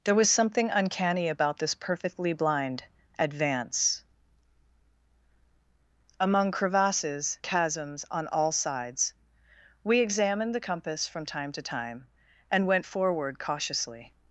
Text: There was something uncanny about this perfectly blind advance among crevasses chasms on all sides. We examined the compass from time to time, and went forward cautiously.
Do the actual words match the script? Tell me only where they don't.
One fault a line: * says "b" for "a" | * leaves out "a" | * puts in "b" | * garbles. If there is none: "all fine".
all fine